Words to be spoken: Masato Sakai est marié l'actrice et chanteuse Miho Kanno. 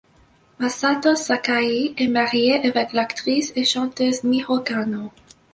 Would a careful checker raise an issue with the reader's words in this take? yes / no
yes